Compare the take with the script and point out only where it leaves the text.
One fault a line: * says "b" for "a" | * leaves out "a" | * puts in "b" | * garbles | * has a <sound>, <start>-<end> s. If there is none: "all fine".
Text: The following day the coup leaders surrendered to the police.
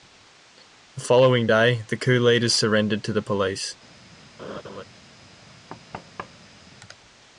* has a laugh, 4.4-4.8 s
* has a thud, 5.7-6.6 s